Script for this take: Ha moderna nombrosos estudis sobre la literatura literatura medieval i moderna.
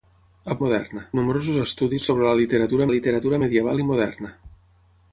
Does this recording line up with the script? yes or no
yes